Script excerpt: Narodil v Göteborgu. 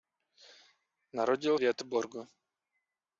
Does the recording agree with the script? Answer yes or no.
yes